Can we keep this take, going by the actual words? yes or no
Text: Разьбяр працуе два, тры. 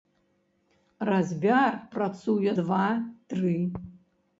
yes